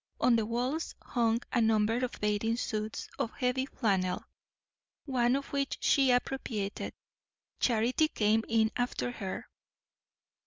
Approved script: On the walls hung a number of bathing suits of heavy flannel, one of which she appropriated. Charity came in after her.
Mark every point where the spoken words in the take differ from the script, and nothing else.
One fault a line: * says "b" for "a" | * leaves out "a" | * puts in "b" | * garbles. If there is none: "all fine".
all fine